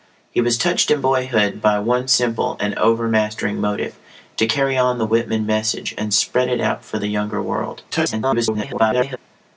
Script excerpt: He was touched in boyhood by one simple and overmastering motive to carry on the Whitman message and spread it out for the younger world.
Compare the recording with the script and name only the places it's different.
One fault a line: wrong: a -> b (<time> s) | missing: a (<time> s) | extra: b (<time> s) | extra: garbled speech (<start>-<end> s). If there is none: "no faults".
extra: garbled speech (7.9-9.2 s)